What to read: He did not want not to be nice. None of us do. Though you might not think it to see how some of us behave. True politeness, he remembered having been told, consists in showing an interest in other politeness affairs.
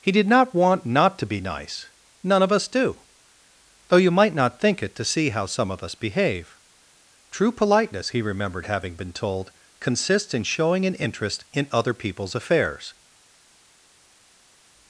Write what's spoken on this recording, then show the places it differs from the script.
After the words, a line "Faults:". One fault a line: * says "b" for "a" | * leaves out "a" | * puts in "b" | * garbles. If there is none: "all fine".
He did not want not to be nice. None of us do. Though you might not think it to see how some of us behave. True politeness, he remembered having been told, consists in showing an interest in other people's affairs.
Faults:
* says "people's" for "politeness"